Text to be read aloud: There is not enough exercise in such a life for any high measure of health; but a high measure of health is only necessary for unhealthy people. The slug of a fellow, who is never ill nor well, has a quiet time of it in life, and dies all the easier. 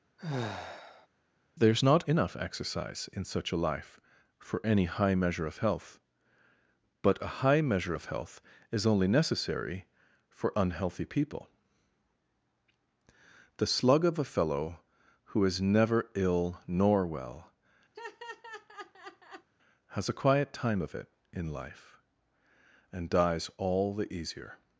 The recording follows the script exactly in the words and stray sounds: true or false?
false